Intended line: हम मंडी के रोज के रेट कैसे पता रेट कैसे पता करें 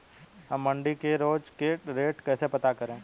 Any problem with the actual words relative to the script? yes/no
yes